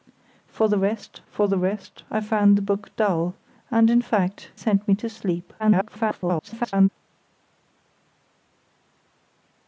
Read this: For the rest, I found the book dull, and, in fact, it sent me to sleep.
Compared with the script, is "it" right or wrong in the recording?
wrong